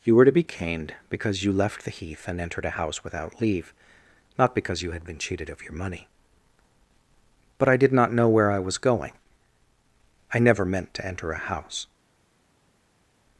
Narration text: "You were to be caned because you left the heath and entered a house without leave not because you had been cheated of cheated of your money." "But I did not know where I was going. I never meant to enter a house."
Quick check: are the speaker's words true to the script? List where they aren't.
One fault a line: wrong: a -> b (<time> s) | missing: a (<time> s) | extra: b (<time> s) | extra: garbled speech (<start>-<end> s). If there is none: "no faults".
missing: cheated of (5.6 s)